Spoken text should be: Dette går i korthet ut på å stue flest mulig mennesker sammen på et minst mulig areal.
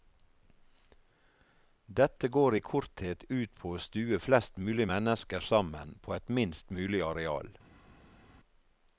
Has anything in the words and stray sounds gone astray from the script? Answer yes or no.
no